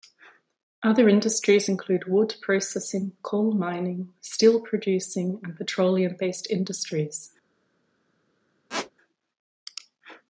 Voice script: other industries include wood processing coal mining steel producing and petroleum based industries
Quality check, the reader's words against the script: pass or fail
pass